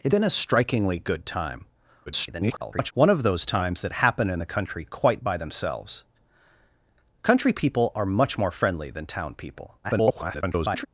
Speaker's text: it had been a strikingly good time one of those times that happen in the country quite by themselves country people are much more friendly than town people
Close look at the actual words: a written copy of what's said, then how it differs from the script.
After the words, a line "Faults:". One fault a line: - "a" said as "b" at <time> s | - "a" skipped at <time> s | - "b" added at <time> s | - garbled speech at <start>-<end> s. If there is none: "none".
it been a strikingly good time [garbled] one of those times that happen in the country quite by themselves country people are much more friendly than town people [garbled]
Faults:
- "had" skipped at 0.1 s
- garbled speech at 2.1-2.9 s
- garbled speech at 9.8-10.9 s